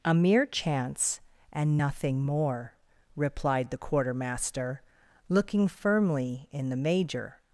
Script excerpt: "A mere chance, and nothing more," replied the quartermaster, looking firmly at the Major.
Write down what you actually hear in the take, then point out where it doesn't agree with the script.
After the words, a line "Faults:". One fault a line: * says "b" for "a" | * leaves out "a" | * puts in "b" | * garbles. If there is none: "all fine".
"A mere chance, and nothing more," replied the quartermaster, looking firmly in the Major.
Faults:
* says "in" for "at"